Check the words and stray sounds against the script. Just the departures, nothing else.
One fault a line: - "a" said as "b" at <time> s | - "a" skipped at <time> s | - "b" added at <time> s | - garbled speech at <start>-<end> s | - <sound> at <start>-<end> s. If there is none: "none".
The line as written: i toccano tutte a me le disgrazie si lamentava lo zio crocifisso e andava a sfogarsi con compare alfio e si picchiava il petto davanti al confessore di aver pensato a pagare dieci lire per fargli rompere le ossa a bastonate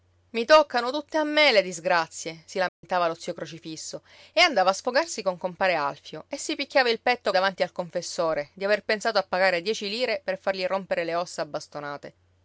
- dropout at 2.7-2.8 s